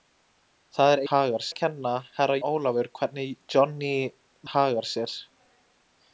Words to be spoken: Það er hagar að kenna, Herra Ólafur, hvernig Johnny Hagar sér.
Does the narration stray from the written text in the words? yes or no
no